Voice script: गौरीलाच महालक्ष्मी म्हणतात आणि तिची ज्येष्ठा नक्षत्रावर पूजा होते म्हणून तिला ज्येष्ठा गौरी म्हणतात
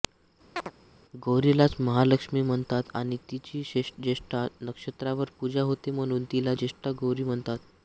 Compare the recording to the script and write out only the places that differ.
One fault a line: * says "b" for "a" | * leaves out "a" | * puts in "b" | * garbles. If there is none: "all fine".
all fine